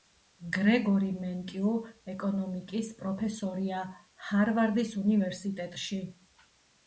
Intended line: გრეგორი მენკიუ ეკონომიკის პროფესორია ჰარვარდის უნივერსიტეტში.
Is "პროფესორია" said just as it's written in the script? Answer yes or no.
yes